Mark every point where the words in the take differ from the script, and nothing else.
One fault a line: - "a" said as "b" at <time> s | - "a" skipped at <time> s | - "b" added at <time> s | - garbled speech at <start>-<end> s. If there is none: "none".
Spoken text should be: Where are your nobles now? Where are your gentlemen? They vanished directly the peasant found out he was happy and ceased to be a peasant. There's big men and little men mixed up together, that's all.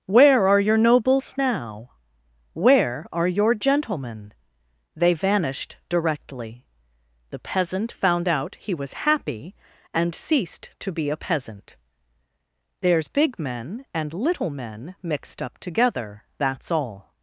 none